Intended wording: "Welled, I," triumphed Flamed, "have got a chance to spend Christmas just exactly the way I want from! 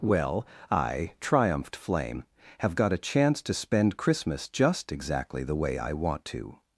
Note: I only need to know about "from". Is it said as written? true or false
false